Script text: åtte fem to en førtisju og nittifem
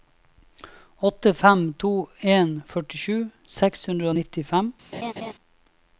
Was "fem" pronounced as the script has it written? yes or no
yes